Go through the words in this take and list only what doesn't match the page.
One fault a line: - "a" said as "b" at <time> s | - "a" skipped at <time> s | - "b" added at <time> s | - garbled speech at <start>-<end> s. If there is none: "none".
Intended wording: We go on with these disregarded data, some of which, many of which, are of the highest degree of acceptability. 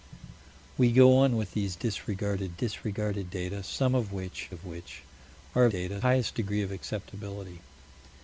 - "disregarded" added at 2.5 s
- "many" skipped at 4.5 s
- "the" said as "data" at 5.7 s